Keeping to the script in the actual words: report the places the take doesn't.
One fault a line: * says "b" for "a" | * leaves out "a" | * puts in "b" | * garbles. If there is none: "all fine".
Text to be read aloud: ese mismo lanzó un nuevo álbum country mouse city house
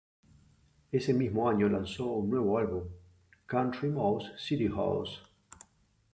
* puts in "año"